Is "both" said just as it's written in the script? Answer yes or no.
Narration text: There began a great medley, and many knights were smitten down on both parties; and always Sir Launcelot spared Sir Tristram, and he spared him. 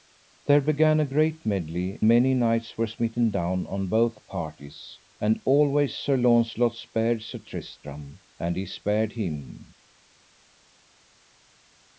yes